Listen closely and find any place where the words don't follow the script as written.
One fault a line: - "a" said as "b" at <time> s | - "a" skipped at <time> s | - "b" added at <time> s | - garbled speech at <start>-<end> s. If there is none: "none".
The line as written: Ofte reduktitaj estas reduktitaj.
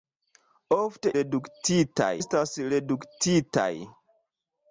none